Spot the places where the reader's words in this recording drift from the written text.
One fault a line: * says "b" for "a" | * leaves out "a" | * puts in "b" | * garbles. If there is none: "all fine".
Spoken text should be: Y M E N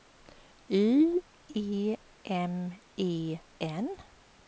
* puts in "E"